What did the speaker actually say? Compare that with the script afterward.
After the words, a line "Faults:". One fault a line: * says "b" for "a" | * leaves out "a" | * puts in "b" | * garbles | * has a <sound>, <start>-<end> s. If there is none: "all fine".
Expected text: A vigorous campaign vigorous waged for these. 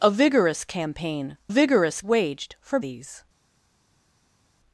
A vigorous campaign vigorous waged for these.
Faults:
all fine